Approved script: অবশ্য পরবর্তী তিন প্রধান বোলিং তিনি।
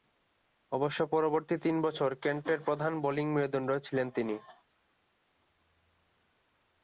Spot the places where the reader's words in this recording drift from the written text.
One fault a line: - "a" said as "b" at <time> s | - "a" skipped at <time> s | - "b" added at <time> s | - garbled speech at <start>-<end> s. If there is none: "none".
- "বছর কেন্টের" added at 1.8 s
- "মেরুদণ্ড ছিলেন" added at 3.3 s